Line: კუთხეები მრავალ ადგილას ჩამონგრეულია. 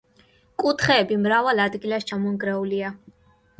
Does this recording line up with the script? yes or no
yes